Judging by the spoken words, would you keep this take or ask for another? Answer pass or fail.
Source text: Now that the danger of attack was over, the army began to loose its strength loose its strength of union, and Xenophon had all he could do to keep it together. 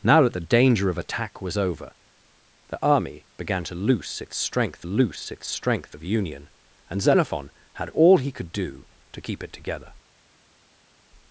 pass